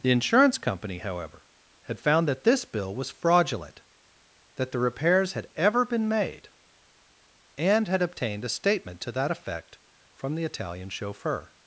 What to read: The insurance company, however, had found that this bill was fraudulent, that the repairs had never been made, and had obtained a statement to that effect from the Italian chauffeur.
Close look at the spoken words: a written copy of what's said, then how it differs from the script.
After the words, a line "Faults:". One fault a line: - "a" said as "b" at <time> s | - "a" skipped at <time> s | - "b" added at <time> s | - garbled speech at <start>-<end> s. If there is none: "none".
The insurance company, however, had found that this bill was fraudulent, that the repairs had ever been made, and had obtained a statement to that effect from the Italian chauffeur.
Faults:
- "never" said as "ever" at 5.6 s